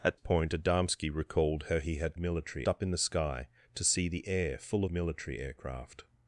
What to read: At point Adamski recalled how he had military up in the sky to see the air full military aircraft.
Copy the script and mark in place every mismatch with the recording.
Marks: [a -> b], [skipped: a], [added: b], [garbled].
At point Adamski recalled how he had military up in the sky to see the air full military aircraft.